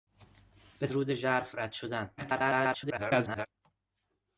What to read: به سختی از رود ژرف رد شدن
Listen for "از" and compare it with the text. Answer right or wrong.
wrong